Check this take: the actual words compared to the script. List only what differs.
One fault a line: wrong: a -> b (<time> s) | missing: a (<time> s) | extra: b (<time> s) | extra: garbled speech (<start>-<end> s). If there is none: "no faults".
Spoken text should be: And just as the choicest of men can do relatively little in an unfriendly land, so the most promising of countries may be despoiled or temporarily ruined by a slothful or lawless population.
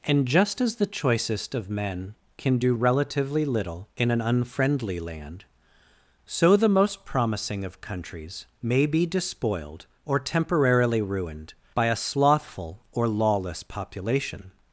no faults